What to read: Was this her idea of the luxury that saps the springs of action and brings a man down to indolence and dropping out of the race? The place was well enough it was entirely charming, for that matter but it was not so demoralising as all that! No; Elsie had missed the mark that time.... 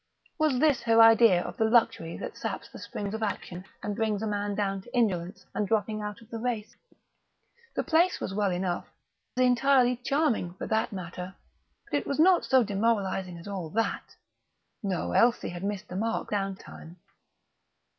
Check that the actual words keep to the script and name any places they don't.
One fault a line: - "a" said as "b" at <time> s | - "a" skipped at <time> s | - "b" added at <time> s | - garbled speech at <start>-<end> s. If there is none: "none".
- "it was" skipped at 8.9 s
- "that" said as "down" at 16.3 s